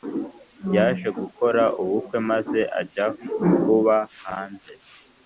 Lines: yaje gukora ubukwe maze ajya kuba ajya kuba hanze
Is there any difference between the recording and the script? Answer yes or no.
yes